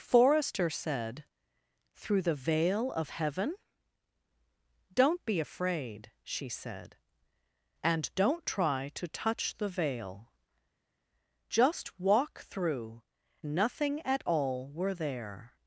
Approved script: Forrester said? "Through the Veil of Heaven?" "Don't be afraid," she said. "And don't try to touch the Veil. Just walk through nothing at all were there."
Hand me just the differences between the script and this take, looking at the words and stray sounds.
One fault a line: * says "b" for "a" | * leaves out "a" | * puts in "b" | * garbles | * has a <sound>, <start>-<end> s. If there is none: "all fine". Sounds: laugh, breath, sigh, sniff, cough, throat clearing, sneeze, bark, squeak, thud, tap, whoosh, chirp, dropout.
all fine